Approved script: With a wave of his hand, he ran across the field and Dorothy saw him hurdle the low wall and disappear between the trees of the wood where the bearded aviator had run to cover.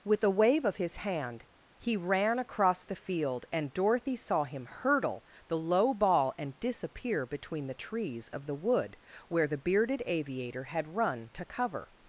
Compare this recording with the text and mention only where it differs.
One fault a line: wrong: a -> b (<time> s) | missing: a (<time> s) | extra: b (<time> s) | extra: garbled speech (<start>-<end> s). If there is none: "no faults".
wrong: wall -> ball (5.9 s)